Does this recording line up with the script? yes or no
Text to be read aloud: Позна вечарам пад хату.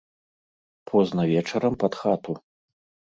yes